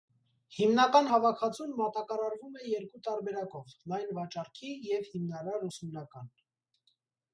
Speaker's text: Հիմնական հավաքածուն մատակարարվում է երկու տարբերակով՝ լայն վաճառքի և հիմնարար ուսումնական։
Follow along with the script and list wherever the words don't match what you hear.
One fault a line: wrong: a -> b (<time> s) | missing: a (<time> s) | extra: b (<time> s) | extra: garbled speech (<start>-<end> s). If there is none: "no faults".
no faults